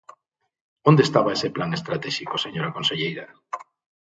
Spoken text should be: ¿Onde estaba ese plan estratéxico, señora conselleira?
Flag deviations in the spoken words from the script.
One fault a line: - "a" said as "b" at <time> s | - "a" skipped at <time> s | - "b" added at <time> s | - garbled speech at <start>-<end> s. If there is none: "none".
none